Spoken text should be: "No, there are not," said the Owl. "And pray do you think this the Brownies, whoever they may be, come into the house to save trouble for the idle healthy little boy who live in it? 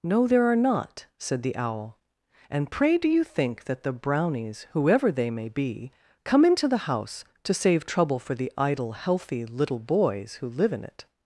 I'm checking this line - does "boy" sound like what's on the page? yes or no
no